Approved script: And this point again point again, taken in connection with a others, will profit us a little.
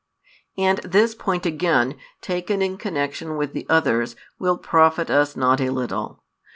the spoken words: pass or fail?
fail